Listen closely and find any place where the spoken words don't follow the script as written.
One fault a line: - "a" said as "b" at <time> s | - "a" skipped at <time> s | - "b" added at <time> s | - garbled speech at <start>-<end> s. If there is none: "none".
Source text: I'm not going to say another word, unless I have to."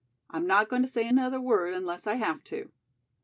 none